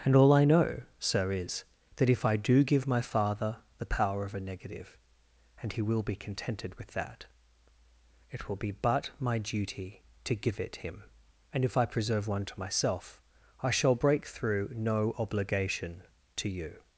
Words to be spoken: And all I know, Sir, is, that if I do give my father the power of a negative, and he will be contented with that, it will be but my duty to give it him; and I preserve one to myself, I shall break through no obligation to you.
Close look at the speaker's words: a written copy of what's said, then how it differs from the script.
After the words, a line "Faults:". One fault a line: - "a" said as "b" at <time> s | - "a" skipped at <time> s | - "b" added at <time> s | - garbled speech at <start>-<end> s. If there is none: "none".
And all I know, Sir, is, that if I do give my father the power of a negative, and he will be contented with that, it will be but my duty to give it him; and if I preserve one to myself, I shall break through no obligation to you.
Faults:
- "if" added at 11.6 s